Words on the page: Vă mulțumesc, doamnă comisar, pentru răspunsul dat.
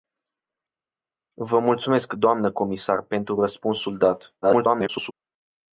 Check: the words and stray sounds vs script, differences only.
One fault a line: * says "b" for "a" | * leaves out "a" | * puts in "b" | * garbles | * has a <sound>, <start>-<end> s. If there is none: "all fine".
* garbles